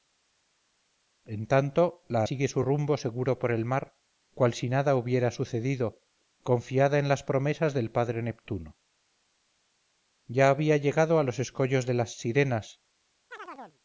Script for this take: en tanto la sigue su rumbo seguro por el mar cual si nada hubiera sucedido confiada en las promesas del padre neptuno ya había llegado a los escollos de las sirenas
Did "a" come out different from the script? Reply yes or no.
no